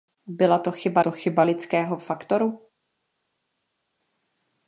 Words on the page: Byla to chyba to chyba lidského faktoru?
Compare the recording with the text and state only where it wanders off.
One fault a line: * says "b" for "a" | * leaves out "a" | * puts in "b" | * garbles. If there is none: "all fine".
all fine